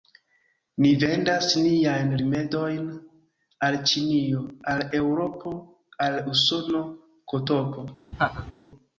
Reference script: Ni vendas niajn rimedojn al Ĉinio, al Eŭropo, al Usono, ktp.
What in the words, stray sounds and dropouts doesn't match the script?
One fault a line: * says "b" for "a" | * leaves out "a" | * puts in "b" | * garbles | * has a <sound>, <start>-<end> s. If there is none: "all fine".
* has a laugh, 8.1-8.5 s